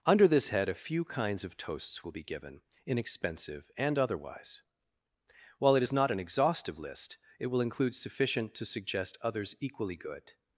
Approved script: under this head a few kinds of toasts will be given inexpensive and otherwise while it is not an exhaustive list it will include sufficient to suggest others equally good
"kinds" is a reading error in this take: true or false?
false